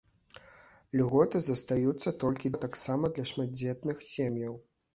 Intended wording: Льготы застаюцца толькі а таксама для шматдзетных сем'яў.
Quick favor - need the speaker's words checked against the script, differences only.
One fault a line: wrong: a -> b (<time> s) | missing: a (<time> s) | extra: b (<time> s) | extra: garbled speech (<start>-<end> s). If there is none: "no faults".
no faults